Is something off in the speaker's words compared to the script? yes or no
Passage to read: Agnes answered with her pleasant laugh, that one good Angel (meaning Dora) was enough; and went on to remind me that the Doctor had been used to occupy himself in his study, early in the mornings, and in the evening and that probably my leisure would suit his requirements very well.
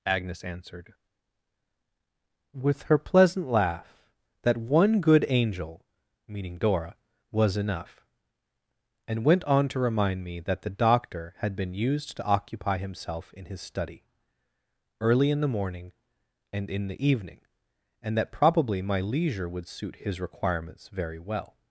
yes